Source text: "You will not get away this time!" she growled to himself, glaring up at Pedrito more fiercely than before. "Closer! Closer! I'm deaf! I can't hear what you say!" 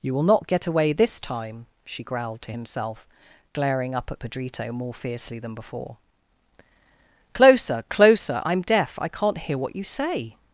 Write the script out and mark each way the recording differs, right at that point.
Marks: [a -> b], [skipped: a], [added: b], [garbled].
"You will not get away this time!" she growled to himself, glaring up at Pedrito more fiercely than before. "Closer! Closer! I'm deaf! I can't hear what you say!"